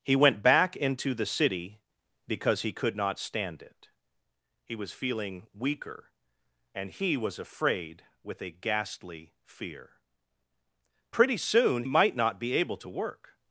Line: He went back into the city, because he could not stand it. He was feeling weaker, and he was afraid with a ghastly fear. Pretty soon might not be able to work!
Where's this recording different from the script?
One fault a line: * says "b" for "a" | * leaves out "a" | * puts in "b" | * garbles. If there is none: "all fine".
all fine